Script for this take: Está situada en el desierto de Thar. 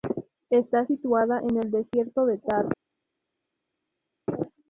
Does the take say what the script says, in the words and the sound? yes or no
yes